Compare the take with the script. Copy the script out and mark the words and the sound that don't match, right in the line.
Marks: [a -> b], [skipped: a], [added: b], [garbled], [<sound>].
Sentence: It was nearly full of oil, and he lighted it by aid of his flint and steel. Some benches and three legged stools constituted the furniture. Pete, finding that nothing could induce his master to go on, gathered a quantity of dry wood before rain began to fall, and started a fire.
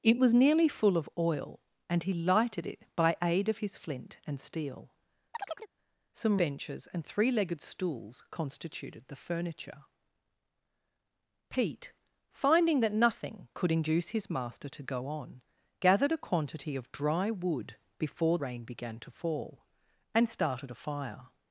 It was nearly full of oil, and he lighted it by aid of his flint and steel. [chirp] Some benches and three legged stools constituted the furniture. Pete, finding that nothing could induce his master to go on, gathered a quantity of dry wood before rain began to fall, and started a fire.